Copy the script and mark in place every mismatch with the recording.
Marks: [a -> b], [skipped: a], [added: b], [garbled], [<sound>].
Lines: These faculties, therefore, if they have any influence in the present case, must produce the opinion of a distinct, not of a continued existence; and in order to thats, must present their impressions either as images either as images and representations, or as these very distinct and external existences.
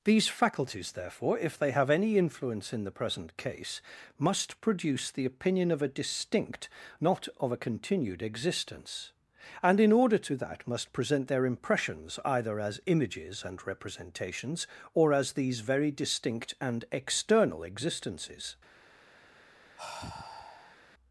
These faculties, therefore, if they have any influence in the present case, must produce the opinion of a distinct, not of a continued existence; and in order to [thats, -> that] must present their impressions either as images [skipped: either as images] and representations, or as these very distinct and external existences. [sigh]